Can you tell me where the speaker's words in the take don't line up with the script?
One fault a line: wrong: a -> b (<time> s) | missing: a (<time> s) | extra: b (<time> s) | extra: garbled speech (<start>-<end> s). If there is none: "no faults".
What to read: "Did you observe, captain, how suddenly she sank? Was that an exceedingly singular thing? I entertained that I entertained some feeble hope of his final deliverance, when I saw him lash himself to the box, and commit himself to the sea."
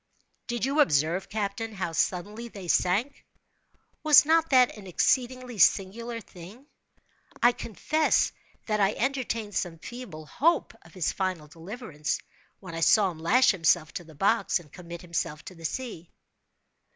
wrong: she -> they (2.5 s)
extra: not (4.2 s)
wrong: entertained -> confess (7.5 s)